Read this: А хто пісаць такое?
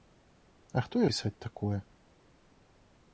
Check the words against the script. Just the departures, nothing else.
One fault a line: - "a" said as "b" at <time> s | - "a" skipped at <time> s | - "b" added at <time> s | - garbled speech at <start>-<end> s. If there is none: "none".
none